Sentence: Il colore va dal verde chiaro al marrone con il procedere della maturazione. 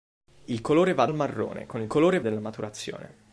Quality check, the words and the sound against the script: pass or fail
fail